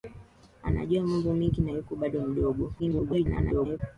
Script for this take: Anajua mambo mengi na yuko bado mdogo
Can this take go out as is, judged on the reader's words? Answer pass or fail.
fail